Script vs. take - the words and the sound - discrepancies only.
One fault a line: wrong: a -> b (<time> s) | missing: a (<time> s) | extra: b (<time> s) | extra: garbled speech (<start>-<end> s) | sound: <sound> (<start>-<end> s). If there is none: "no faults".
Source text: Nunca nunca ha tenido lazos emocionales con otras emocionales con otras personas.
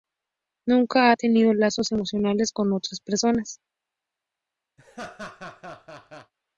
missing: nunca (1.1 s)
missing: emocionales con otras (3.0 s)
sound: laugh (4.8-6.3 s)